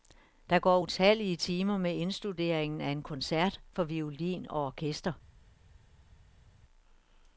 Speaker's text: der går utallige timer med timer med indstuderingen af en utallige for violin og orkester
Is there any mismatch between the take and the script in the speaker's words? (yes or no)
yes